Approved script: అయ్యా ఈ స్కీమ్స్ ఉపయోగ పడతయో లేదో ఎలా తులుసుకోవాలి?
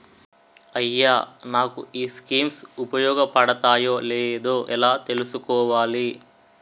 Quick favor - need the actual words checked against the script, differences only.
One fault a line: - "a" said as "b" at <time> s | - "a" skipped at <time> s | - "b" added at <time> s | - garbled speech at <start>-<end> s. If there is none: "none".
- "నాకు" added at 1.5 s